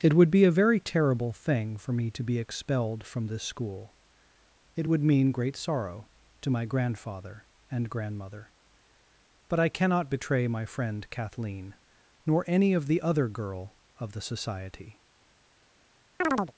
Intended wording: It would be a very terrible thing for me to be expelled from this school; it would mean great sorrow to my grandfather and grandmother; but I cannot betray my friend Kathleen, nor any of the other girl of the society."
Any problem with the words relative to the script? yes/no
no